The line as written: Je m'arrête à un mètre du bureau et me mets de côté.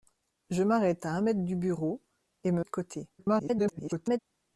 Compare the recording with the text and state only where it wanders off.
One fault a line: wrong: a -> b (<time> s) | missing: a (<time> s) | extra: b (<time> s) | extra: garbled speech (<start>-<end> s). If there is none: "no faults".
missing: mets (2.6 s)
extra: garbled speech (3.2-4.2 s)